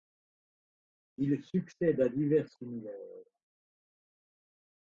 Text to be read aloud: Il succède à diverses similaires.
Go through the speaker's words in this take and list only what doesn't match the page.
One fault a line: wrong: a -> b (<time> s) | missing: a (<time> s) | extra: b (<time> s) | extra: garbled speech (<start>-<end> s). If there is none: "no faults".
no faults